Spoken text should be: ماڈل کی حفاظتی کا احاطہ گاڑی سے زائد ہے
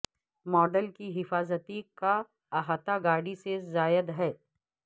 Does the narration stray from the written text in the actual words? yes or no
no